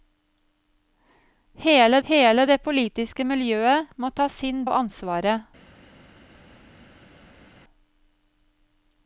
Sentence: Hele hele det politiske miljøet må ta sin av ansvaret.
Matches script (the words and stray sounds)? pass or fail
pass